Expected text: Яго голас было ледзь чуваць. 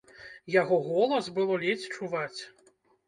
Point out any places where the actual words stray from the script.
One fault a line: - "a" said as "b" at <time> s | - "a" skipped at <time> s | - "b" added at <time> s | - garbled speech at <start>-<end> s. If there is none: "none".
none